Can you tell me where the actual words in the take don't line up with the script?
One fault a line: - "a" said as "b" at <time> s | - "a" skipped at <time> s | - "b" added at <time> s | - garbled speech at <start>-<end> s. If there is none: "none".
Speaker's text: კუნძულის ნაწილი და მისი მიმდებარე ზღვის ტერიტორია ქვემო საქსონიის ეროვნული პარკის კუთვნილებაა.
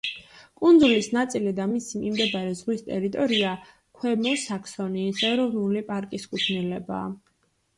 none